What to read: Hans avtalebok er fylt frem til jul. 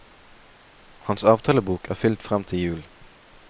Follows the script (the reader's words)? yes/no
yes